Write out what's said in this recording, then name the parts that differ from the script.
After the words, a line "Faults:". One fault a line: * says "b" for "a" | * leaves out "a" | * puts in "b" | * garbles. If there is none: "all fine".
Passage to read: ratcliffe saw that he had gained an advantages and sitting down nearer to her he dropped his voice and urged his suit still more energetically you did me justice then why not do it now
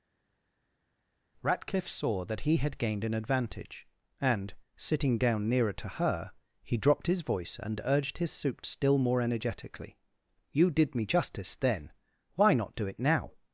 ratcliffe saw that he had gained an advantage and sitting down nearer to her he dropped his voice and urged his suit still more energetically you did me justice then why not do it now
Faults:
* says "advantage" for "advantages"